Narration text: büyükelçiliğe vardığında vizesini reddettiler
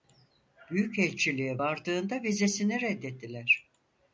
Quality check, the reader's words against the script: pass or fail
pass